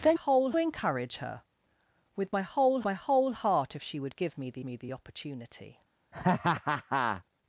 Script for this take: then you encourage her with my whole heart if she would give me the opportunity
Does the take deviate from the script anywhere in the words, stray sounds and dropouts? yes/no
yes